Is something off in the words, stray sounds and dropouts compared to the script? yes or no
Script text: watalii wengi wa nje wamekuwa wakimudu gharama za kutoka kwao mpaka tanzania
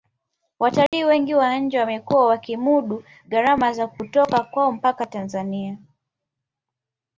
yes